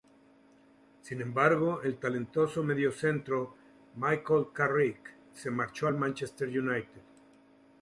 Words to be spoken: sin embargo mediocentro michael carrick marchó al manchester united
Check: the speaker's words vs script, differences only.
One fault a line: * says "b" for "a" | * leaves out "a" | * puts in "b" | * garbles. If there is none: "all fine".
* puts in "el talentoso"
* puts in "se"